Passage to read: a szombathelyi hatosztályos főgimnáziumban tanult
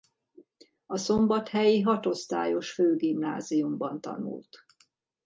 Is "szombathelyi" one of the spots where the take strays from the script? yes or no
no